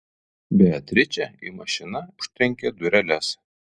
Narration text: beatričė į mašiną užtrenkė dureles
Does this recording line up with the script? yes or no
yes